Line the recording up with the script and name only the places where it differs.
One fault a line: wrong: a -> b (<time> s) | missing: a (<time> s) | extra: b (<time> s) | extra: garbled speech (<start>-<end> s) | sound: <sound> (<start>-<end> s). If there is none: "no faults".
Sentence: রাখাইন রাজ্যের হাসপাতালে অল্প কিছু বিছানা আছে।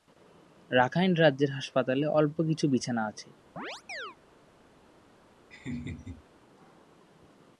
sound: chirp (3.6-4.2 s)
sound: laugh (5.5-6.2 s)